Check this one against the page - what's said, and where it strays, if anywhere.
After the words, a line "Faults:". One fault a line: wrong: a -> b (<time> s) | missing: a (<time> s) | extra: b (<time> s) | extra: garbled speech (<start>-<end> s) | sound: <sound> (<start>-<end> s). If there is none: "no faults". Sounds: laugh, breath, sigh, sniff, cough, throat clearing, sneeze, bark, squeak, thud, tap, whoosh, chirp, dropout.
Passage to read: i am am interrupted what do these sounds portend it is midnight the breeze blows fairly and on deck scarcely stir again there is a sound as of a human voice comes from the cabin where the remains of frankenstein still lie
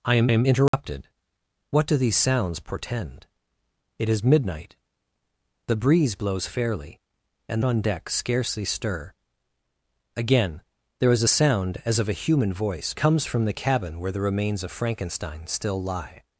i am am interrupted what do these sounds portend it is midnight the breeze blows fairly and on deck scarcely stir again there is a sound as of a human voice comes from the cabin where the remains of frankenstein still lie
Faults:
sound: dropout (0.7-0.7 s)